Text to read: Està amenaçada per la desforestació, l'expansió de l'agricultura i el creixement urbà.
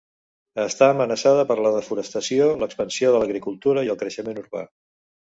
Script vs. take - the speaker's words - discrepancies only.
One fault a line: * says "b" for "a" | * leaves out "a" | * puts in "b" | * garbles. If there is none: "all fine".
all fine